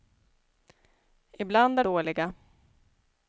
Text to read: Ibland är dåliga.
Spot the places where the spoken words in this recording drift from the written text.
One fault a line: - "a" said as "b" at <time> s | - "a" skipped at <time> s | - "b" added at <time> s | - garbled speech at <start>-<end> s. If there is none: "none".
none